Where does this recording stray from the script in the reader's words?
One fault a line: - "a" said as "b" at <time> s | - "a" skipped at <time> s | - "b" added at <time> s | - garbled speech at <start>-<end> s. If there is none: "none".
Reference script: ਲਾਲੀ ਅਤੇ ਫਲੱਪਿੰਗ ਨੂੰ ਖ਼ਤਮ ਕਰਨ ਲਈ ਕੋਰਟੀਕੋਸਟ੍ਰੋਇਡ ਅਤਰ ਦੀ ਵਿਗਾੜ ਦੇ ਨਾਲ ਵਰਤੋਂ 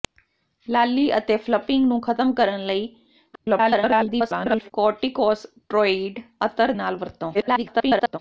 - garbled speech at 3.3-4.7 s
- "ਦੀ ਵਿਗਾੜ ਦੇ" skipped at 6.7 s
- garbled speech at 7.3-8.2 s